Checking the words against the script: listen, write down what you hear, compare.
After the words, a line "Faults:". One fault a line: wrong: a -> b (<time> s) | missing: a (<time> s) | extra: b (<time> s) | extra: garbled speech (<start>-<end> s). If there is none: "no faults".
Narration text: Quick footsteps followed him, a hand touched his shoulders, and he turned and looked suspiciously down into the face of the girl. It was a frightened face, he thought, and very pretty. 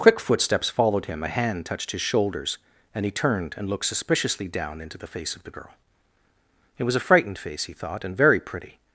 Quick footsteps followed him, a hand touched his shoulders, and he turned and looked suspiciously down into the face of the girl. It was a frightened face, he thought, and very pretty.
Faults:
no faults